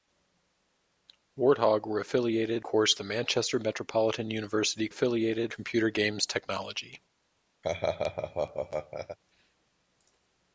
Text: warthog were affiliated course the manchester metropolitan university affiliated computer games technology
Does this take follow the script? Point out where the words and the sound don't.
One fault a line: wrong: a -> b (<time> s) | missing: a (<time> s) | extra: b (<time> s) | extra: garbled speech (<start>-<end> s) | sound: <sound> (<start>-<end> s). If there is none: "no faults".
sound: laugh (7.6-9.2 s)